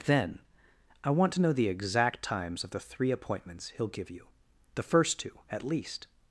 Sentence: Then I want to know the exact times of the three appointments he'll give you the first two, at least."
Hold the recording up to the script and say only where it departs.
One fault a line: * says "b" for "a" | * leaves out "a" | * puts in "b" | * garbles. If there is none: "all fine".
all fine